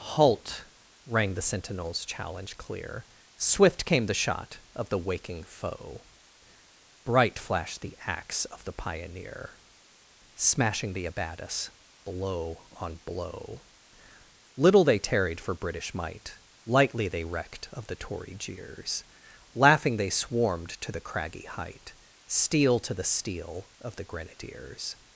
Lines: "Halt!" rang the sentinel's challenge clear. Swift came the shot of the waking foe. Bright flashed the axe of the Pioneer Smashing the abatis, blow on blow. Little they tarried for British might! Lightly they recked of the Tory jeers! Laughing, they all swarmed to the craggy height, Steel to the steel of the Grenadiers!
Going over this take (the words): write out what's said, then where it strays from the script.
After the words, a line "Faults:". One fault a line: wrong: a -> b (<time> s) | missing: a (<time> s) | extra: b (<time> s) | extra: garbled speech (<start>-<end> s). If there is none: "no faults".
"Halt!" rang the sentinel's challenge clear. Swift came the shot of the waking foe. Bright flashed the axe of the Pioneer Smashing the abatis, blow on blow. Little they tarried for British might! Lightly they recked of the Tory jeers! Laughing, they swarmed to the craggy height, Steel to the steel of the Grenadiers!
Faults:
missing: all (20.1 s)